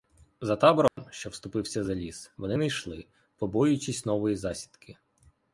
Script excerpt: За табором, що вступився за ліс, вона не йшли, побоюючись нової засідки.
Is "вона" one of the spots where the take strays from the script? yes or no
yes